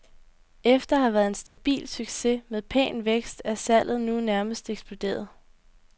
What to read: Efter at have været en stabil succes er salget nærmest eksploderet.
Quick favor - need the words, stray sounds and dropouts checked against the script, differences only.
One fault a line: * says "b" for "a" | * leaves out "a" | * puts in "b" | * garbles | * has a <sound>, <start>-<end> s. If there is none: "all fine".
* has a dropout, 1.5-1.6 s
* puts in "med pæn vækst"
* puts in "nu"